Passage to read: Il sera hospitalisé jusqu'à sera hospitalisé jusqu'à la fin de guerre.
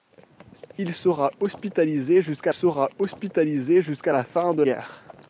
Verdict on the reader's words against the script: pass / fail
pass